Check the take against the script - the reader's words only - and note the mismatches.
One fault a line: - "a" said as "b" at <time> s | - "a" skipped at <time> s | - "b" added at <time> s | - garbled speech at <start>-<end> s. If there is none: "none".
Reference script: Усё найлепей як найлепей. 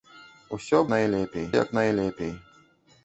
none